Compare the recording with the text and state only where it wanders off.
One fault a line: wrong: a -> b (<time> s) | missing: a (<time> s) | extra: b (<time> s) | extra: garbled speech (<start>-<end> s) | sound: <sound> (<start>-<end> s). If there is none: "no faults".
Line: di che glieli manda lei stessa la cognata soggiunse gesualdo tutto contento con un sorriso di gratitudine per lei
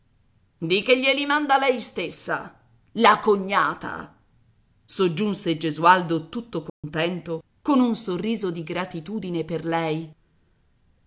sound: dropout (6.7-6.8 s)